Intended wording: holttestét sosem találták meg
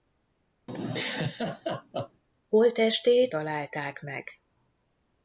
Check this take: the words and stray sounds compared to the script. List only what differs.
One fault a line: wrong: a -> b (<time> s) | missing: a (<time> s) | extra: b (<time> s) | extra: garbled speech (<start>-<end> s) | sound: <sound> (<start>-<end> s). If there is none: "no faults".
sound: laugh (0.7-2.2 s)
missing: sosem (3.3 s)